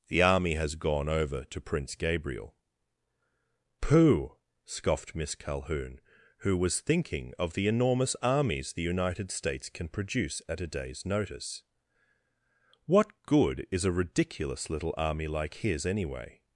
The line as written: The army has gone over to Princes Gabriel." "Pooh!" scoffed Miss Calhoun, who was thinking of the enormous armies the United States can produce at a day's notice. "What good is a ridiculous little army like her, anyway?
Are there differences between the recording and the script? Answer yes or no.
yes